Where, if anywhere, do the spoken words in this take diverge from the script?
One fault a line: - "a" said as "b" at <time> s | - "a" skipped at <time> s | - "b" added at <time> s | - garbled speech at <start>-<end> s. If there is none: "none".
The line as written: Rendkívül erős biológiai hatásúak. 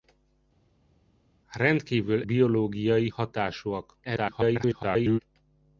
- "erős" skipped at 2.2 s
- garbled speech at 4.0-5.2 s